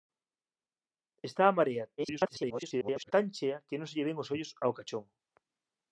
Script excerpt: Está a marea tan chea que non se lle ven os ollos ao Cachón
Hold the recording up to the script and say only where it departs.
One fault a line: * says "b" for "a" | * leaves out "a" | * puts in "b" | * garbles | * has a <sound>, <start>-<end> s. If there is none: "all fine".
* garbles